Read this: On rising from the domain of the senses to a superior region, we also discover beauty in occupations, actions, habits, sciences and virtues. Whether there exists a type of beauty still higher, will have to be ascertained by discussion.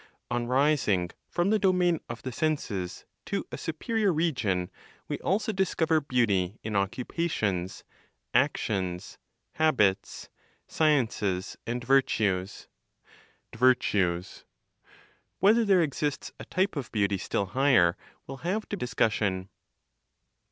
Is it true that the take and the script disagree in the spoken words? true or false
true